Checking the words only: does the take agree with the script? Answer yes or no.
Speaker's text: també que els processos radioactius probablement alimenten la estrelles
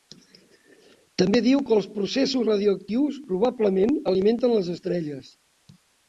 no